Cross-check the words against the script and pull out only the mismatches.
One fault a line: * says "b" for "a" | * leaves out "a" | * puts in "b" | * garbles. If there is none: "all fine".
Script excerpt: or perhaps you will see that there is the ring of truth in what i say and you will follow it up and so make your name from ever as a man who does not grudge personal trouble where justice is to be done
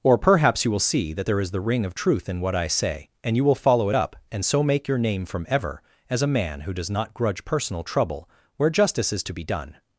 all fine